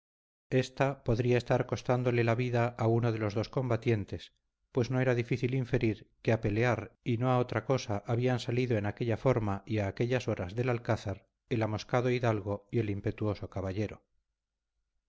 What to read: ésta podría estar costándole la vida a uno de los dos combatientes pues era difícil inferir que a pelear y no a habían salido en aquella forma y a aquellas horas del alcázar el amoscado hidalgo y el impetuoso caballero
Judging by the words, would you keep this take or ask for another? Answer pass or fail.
fail